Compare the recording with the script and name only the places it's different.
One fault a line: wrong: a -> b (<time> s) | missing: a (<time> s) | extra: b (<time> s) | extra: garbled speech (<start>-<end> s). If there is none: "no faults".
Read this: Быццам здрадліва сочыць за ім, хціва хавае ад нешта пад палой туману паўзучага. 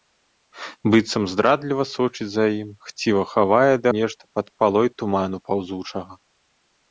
no faults